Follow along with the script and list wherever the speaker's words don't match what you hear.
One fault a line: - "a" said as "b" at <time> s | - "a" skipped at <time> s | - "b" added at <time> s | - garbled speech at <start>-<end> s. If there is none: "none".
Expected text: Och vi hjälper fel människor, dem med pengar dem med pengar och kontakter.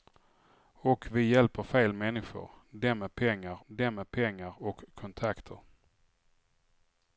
none